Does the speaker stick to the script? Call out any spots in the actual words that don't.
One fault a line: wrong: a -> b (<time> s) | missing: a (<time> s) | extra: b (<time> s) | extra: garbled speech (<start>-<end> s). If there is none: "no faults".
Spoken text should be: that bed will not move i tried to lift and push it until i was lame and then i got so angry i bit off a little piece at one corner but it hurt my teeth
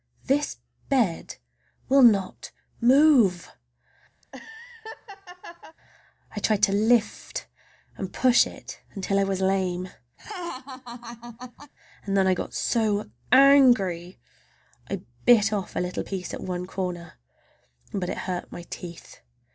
wrong: that -> this (0.2 s)